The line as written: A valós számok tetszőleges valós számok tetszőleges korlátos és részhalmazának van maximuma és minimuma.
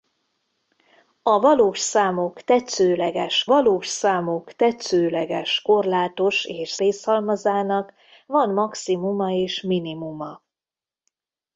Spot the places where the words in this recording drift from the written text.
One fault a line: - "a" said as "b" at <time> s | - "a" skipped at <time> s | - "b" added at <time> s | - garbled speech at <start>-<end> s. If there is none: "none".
none